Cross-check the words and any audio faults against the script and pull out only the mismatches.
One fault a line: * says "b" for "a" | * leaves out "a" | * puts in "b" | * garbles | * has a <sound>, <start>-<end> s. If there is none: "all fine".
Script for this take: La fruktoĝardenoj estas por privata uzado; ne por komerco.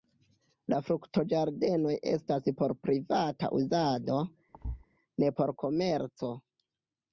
* has a thud, 4.5-4.9 s